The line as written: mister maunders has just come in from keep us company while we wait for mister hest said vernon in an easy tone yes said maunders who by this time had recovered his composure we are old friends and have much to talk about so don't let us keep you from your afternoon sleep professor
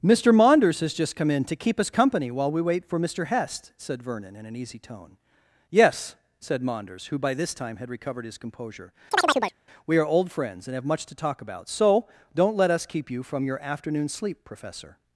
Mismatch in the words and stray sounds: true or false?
true